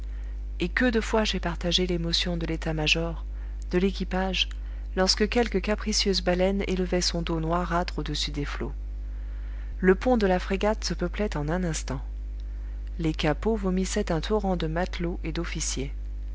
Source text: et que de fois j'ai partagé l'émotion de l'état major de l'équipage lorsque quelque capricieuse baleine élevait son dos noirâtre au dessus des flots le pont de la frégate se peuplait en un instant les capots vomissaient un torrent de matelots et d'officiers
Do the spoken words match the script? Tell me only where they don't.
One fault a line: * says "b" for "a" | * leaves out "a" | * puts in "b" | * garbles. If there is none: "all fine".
all fine